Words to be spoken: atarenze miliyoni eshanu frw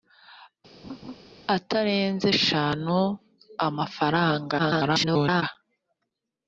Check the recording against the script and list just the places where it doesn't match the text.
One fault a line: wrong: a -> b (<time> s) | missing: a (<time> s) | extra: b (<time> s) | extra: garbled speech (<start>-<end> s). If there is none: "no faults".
missing: miliyoni (2.3 s)
extra: garbled speech (4.6-5.4 s)